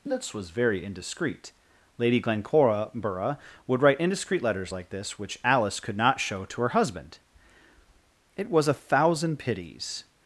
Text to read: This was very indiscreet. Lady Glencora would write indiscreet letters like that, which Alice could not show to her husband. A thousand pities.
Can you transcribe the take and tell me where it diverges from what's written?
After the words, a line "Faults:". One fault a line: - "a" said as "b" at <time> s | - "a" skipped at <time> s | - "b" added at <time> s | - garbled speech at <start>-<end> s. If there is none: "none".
This was very indiscreet. Lady Glencora would write indiscreet letters like this, which Alice could not show to her husband. It was a thousand pities.
Faults:
- "that" said as "this" at 4.9 s
- "It was" added at 8.3 s